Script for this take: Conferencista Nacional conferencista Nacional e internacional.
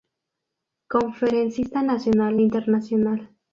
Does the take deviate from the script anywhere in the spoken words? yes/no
yes